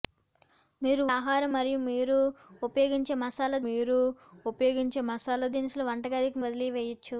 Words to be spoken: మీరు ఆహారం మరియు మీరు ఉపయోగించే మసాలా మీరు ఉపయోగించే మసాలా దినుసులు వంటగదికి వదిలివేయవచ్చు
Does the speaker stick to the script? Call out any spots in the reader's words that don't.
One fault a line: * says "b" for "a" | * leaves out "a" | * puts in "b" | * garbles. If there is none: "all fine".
all fine